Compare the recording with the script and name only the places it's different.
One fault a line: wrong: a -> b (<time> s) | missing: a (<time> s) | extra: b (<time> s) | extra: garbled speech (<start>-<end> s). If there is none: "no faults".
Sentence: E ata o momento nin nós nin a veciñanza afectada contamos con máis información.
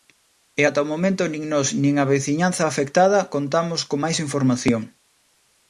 no faults